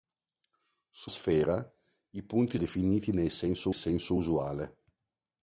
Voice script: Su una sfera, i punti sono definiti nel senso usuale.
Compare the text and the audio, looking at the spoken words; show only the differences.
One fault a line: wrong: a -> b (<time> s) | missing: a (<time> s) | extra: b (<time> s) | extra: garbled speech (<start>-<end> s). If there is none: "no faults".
missing: una (1.1 s)
missing: sono (2.6 s)
extra: senso (3.7 s)